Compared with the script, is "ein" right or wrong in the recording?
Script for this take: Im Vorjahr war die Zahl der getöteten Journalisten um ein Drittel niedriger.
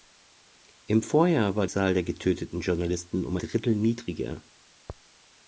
wrong